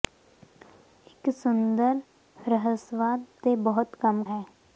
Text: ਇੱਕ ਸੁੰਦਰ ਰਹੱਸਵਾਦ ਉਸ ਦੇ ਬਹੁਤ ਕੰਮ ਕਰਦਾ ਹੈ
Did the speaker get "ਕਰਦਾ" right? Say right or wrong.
wrong